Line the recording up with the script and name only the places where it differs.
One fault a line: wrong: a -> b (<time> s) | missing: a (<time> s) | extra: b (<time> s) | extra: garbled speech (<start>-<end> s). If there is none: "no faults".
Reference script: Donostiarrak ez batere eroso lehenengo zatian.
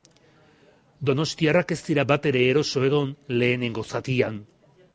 extra: dira (1.9 s)
extra: egon (2.9 s)